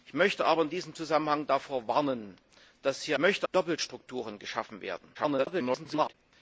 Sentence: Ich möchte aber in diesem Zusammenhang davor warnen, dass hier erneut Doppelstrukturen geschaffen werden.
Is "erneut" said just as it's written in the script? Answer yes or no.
no